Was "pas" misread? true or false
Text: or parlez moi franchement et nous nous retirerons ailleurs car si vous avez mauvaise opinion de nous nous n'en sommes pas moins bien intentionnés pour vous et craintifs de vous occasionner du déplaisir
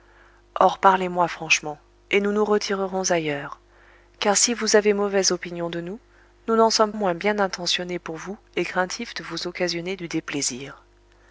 true